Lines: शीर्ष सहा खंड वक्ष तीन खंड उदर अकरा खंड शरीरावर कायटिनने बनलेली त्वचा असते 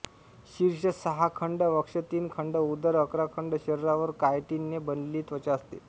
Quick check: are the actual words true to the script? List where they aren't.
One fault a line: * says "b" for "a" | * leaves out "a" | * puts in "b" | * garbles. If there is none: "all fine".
all fine